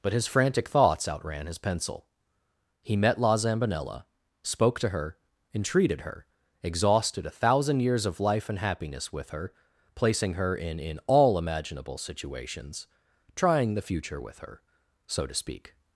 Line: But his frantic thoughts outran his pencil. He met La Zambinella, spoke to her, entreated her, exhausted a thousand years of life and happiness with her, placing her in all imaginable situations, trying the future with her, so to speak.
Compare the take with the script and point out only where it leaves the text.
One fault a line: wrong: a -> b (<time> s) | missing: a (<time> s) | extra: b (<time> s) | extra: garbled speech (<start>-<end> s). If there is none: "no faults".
extra: in (10.8 s)